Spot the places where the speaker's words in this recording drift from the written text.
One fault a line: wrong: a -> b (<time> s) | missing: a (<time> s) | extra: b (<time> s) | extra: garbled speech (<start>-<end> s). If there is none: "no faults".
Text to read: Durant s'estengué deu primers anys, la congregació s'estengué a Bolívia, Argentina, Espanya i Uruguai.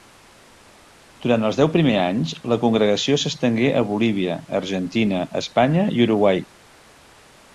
wrong: s'estengué -> els (1.5 s)